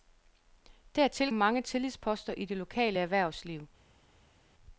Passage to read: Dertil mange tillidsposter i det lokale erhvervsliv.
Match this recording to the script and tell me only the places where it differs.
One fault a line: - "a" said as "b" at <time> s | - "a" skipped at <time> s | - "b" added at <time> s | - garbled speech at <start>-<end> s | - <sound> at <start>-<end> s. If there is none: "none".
none